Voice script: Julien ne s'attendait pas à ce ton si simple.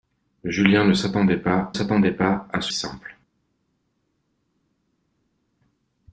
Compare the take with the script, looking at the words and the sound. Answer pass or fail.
fail